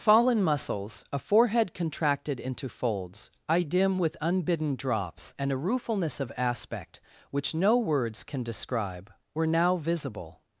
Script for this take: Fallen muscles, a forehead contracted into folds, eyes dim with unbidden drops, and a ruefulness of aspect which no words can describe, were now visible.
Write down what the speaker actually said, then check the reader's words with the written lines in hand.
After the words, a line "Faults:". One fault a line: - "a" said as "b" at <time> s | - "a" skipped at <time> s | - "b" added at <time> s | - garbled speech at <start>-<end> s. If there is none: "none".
Fallen muscles, a forehead contracted into folds, eye dim with unbidden drops, and a ruefulness of aspect which no words can describe, were now visible.
Faults:
- "eyes" said as "eye" at 3.5 s